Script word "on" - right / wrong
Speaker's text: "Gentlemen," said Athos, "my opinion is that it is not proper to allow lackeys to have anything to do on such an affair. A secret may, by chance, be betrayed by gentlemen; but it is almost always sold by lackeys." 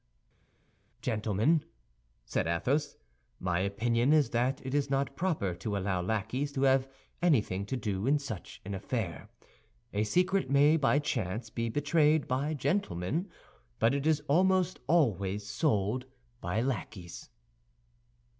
wrong